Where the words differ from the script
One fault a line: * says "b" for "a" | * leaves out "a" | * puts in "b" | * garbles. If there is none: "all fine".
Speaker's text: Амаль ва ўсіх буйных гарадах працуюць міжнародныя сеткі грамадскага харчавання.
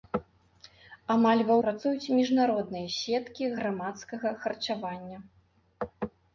* leaves out "ўсіх буйных гарадах"